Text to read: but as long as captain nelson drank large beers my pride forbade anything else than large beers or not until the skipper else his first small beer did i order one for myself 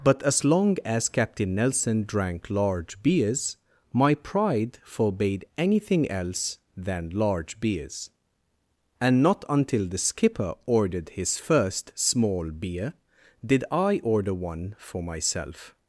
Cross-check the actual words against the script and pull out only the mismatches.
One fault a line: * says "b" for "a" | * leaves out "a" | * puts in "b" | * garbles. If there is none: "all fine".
* says "and" for "or"
* says "ordered" for "else"